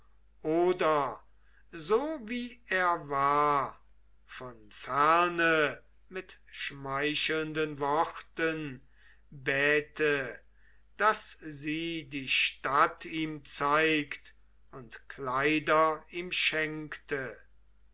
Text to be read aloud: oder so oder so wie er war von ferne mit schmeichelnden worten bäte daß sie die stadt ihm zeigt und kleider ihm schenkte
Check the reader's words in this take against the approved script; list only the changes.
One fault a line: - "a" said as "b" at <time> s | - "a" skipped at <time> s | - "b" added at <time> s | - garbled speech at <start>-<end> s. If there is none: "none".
- "oder so" skipped at 2.2 s